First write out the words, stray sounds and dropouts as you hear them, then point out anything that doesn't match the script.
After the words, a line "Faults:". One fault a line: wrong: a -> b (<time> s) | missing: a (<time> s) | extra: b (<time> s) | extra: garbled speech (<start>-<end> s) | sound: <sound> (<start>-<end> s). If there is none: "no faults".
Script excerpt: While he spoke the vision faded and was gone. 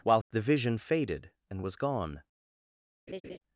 While the vision faded and was gone.
Faults:
missing: he spoke (0.2 s)
sound: laugh (3.1-3.4 s)